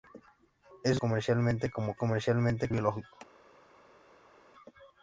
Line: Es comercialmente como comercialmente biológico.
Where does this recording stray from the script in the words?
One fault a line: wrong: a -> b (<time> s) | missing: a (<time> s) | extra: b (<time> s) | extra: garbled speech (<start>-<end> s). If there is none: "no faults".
no faults